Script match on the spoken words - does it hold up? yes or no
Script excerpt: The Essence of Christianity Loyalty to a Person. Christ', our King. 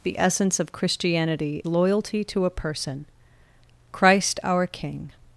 yes